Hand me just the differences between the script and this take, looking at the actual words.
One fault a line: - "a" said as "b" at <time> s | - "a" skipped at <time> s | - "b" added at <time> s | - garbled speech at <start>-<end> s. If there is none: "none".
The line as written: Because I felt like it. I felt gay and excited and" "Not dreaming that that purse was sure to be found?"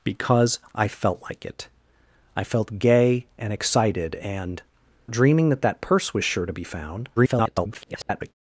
- "Not" skipped at 4.6 s
- garbled speech at 7.2-8.3 s